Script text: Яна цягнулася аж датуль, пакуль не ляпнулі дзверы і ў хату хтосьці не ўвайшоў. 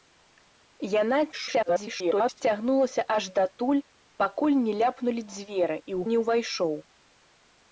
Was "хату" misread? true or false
true